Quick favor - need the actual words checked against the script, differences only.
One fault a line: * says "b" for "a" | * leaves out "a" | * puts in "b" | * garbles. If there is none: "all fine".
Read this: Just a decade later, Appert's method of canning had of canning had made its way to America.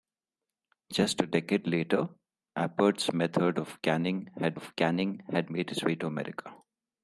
all fine